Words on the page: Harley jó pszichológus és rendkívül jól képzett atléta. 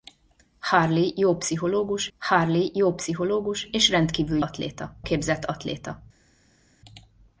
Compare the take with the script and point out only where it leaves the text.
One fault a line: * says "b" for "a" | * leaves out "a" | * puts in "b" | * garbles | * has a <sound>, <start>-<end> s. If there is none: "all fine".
* puts in "harley jó pszichológus"
* says "atléta" for "jól"